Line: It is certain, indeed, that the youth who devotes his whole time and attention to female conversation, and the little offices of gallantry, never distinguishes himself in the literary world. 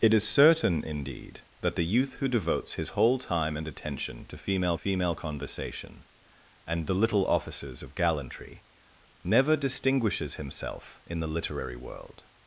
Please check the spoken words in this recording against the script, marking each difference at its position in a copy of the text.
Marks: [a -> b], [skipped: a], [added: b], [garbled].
It is certain, indeed, that the youth who devotes his whole time and attention to female [added: female] conversation, and the little offices of gallantry, never distinguishes himself in the literary world.